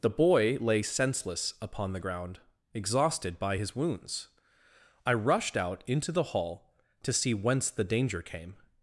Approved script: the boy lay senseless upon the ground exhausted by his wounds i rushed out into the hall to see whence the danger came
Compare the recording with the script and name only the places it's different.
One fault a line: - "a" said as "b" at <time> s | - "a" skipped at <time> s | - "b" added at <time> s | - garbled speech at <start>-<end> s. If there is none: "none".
none